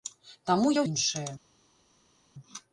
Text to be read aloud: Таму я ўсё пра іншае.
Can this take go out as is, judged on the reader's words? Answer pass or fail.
fail